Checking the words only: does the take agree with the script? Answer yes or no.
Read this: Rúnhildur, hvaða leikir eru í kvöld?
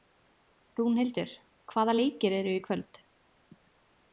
yes